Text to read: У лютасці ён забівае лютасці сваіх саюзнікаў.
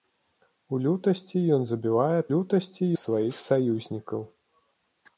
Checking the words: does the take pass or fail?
pass